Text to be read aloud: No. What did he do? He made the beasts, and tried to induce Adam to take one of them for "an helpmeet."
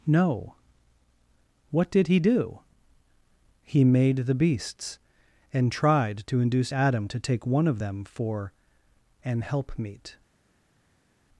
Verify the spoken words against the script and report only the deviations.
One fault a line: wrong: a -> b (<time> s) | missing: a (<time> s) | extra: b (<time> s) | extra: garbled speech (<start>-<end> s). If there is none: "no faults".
no faults